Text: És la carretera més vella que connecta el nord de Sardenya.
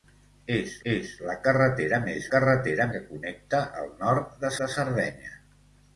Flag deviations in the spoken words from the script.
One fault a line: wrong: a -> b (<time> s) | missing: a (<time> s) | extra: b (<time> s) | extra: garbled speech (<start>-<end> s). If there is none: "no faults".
extra: és (0.9 s)
wrong: vella -> carretera (2.3 s)
extra: de (4.6 s)